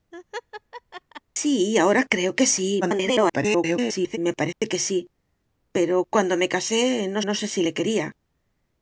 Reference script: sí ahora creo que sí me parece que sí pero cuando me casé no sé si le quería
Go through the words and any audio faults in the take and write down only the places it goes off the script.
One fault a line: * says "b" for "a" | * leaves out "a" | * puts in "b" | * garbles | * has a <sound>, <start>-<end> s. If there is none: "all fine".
* has a laugh, 0.1-1.2 s
* garbles
* has a dropout, 4.5-4.6 s
* puts in "no"